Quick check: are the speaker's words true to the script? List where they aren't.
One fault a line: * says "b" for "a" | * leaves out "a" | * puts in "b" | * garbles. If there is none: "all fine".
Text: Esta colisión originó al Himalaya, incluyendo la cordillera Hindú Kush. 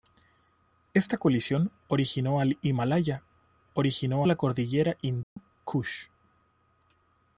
* says "originó" for "incluyendo"